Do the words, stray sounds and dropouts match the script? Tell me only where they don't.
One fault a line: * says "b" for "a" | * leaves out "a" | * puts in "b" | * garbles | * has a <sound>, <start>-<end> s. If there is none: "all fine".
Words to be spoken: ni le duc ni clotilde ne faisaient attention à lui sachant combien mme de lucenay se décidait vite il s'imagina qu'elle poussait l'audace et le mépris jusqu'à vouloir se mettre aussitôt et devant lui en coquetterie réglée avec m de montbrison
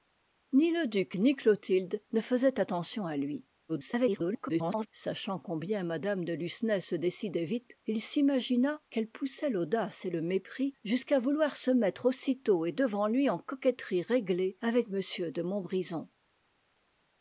* garbles